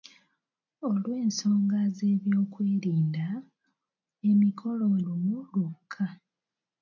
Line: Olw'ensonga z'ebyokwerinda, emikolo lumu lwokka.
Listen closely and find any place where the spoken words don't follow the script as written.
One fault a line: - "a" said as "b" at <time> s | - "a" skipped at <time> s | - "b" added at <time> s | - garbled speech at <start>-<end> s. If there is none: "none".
none